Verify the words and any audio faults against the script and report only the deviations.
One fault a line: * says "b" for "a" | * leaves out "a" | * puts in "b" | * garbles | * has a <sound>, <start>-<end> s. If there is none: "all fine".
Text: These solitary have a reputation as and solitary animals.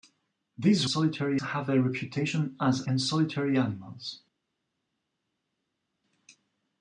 all fine